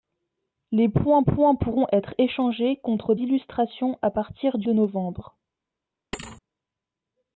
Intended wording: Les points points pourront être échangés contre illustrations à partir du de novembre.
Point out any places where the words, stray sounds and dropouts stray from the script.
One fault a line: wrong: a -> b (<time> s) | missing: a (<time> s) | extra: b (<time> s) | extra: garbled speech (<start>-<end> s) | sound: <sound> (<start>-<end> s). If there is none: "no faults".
sound: thud (6.1-6.4 s)